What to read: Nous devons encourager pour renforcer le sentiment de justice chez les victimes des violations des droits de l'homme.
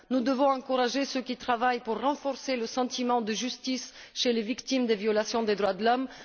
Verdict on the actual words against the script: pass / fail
fail